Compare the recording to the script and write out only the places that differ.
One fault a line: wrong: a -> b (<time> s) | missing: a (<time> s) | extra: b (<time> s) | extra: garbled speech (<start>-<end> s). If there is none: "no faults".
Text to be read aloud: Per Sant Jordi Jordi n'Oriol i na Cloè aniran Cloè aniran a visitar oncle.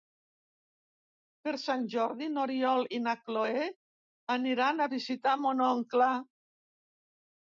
missing: Jordi (2.3 s)
missing: Cloè aniran (4.8 s)
extra: mon (5.5 s)